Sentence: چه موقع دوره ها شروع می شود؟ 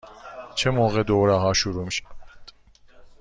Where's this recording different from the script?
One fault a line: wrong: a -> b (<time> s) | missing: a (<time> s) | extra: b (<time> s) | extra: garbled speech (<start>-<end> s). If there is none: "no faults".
no faults